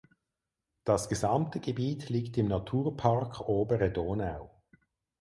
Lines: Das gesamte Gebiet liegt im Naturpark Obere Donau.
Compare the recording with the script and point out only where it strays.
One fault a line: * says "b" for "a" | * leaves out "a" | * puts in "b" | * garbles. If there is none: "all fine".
all fine